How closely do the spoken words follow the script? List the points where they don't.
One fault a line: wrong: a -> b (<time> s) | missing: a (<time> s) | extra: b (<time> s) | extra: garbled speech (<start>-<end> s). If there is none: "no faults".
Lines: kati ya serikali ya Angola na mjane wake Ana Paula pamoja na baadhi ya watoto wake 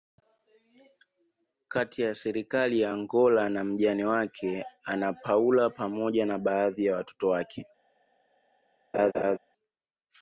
no faults